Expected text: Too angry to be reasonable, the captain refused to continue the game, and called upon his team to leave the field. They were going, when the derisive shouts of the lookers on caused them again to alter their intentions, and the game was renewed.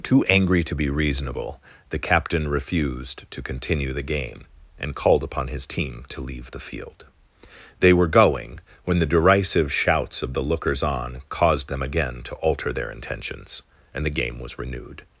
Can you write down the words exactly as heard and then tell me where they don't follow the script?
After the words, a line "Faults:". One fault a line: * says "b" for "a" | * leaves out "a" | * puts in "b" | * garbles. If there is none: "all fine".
Too angry to be reasonable, the captain refused to continue the game, and called upon his team to leave the field. They were going, when the derisive shouts of the lookers on caused them again to alter their intentions, and the game was renewed.
Faults:
all fine